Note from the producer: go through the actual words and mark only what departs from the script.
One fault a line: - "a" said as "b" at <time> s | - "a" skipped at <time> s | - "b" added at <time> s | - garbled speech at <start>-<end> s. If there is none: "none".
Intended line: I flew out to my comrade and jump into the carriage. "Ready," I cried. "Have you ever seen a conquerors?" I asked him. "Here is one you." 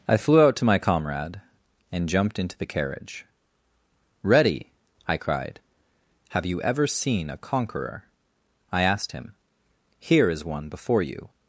- "jump" said as "jumped" at 2.1 s
- "conquerors" said as "conqueror" at 7.4 s
- "before" added at 10.7 s